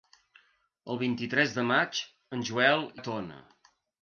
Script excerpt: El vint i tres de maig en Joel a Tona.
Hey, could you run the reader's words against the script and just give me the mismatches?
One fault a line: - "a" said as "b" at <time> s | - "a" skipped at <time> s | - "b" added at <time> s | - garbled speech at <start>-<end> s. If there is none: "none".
none